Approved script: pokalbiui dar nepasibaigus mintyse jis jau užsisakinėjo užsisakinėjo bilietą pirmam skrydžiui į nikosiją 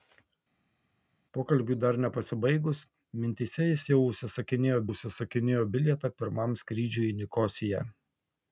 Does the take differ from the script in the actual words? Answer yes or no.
no